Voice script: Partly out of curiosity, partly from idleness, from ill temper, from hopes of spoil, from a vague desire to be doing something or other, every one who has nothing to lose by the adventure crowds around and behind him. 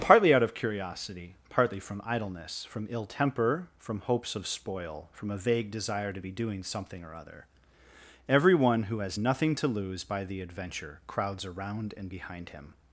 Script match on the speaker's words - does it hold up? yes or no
yes